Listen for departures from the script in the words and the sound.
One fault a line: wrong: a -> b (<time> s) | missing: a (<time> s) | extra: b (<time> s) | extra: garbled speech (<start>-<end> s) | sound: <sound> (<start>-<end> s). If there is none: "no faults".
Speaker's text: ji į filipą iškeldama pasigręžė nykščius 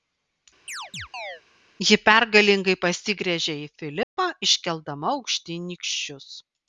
sound: chirp (0.7-1.4 s)
extra: pergalingai pasigręžė (2.1 s)
sound: dropout (4.0-4.2 s)
wrong: pasigręžė -> aukštyn (5.2 s)